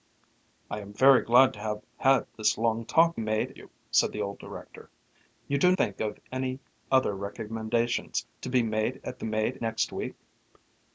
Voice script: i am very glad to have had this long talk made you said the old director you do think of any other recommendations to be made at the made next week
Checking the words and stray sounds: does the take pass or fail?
pass